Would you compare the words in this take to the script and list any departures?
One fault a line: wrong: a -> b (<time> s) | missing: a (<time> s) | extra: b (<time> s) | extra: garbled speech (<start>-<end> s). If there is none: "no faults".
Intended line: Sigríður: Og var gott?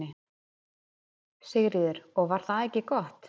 extra: það ekki (2.5 s)